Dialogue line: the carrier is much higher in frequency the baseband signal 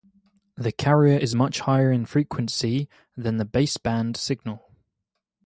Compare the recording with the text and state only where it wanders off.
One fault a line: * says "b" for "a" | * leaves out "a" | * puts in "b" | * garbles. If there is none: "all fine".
* puts in "than"